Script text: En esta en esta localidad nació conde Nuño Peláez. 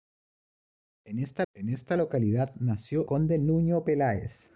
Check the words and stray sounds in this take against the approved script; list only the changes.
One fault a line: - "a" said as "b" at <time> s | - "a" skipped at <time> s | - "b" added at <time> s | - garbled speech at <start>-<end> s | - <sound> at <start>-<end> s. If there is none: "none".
none